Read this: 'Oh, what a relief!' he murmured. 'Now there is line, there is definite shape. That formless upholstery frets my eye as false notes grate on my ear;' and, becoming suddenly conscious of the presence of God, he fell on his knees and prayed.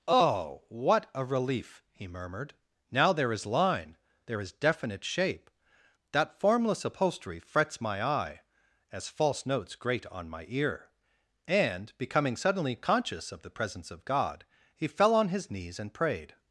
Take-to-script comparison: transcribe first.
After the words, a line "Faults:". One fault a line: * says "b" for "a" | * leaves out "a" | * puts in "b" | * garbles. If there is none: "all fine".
'Oh, what a relief!' he murmured. 'Now there is line, there is definite shape. That formless upholstery frets my eye as false notes grate on my ear;' and, becoming suddenly conscious of the presence of God, he fell on his knees and prayed.
Faults:
all fine